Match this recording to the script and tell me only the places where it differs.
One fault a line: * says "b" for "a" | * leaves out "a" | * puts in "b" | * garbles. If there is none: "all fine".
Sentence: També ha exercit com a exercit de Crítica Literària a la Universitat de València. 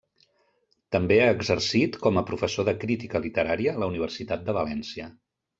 * says "professor" for "exercit"